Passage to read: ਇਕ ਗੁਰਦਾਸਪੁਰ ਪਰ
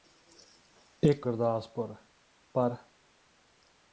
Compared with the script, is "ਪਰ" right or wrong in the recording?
right